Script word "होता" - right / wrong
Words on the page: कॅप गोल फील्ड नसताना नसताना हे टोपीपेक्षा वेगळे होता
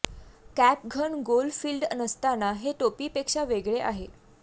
wrong